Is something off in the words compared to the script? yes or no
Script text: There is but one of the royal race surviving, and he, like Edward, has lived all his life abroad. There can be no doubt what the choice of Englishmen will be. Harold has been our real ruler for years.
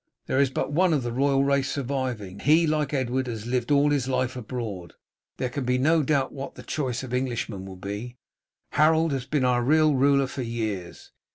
yes